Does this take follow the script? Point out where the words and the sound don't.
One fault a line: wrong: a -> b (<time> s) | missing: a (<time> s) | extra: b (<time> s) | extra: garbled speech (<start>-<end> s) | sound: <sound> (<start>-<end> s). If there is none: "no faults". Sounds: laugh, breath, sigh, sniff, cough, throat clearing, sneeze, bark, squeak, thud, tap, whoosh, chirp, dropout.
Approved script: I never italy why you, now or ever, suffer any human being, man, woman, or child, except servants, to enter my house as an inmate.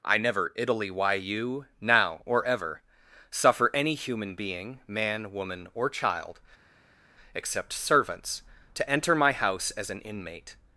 no faults